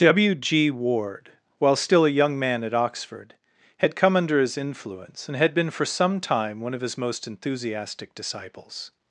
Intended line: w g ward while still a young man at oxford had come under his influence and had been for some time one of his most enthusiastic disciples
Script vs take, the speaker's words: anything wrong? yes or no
no